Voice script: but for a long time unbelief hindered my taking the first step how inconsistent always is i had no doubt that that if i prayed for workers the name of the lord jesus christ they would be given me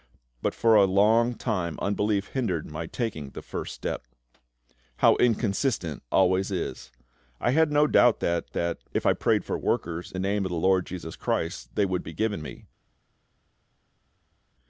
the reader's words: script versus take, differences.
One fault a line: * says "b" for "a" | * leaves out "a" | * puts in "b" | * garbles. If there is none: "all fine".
all fine